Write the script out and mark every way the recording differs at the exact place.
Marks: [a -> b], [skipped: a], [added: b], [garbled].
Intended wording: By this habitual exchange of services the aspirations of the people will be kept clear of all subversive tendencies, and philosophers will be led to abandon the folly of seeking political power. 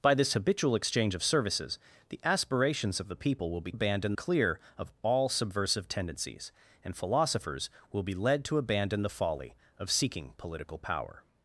By this habitual exchange of services the aspirations of the people will be [kept -> abandon] clear of all subversive tendencies, and philosophers will be led to abandon the folly of seeking political power.